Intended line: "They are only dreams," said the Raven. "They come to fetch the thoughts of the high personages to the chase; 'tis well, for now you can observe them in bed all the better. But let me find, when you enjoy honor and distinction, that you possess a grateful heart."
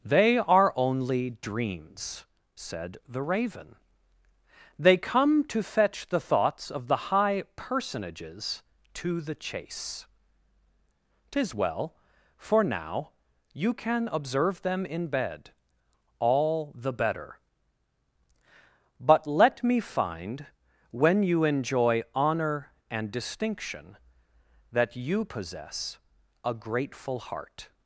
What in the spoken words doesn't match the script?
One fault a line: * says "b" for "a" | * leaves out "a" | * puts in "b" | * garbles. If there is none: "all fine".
all fine